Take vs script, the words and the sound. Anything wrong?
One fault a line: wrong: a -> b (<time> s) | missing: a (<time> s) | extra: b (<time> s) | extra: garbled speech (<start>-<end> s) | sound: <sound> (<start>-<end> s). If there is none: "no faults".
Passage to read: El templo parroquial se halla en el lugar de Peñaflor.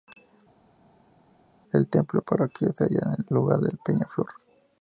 missing: el (3.3 s)